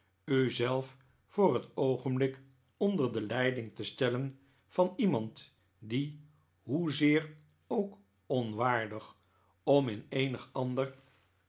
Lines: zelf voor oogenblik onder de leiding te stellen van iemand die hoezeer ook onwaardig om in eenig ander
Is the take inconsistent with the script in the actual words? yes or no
yes